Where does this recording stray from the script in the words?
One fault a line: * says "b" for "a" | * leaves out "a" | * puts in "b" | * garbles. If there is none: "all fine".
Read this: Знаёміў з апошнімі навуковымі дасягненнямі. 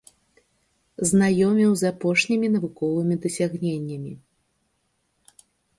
all fine